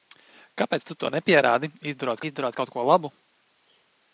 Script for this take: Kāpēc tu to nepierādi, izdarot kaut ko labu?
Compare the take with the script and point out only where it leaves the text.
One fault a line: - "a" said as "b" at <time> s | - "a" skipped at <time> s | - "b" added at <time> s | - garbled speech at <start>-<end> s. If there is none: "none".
- "izdarot" added at 2.3 s